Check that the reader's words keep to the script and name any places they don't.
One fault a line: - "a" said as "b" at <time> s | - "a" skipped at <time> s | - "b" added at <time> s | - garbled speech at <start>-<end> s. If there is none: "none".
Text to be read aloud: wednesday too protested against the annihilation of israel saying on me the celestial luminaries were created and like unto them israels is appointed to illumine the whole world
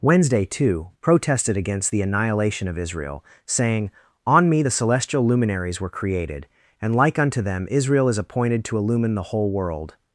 - "israels" said as "israel" at 7.7 s